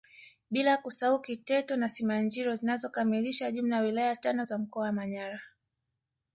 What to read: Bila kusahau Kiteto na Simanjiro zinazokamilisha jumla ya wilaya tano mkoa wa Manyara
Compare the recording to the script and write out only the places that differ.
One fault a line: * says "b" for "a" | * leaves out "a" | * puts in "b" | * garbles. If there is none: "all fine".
* puts in "za"